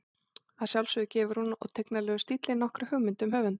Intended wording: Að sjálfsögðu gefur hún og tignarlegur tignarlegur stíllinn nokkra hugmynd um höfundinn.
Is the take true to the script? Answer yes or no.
no